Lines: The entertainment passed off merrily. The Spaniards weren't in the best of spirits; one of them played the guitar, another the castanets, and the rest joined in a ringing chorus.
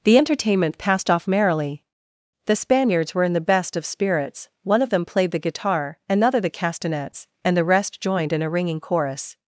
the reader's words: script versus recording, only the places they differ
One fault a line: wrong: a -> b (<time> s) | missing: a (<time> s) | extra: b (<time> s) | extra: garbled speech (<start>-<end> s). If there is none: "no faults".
wrong: weren't -> were (3.1 s)